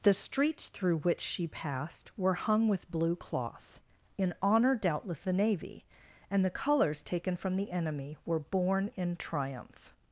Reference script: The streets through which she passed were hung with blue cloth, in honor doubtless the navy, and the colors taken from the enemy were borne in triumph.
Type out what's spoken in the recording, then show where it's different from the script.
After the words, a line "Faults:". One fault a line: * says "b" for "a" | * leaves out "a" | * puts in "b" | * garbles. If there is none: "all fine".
The streets through which she passed were hung with blue cloth, in honor doubtless the navy, and the colors taken from the enemy were borne in triumph.
Faults:
all fine